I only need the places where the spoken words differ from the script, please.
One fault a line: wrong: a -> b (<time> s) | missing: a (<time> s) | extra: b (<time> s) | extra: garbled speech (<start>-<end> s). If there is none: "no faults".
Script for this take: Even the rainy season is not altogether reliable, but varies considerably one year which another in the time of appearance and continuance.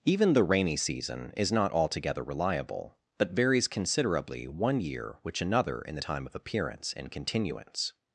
no faults